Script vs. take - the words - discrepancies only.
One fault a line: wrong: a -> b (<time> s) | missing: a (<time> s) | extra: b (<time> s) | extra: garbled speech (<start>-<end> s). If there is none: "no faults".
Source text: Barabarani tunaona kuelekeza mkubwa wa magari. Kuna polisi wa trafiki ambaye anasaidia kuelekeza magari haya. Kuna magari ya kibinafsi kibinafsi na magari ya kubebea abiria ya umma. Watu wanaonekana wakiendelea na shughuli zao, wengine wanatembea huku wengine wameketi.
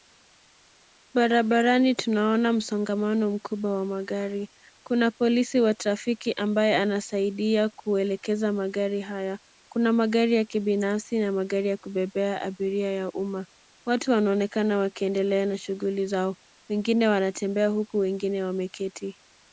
wrong: kuelekeza -> msongamano (2.5 s)
missing: kibinafsi (11.2 s)